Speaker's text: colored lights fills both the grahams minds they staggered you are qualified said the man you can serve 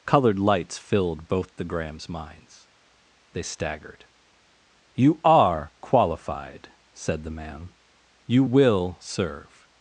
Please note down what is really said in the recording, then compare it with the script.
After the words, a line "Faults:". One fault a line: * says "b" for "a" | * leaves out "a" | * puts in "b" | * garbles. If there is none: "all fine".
colored lights filled both the grahams minds they staggered you are qualified said the man you will serve
Faults:
* says "filled" for "fills"
* says "will" for "can"